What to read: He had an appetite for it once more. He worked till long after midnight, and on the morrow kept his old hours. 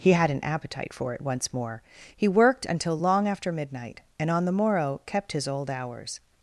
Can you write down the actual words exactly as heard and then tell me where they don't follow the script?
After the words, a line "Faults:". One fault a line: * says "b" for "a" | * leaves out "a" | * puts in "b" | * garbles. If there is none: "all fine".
He had an appetite for it once more. He worked until long after midnight, and on the morrow kept his old hours.
Faults:
* says "until" for "till"